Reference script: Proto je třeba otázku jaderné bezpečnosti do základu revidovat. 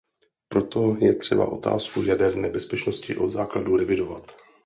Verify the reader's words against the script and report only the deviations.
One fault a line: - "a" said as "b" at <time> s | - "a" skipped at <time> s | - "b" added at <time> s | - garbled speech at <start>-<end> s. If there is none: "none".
- "do" said as "od" at 3.2 s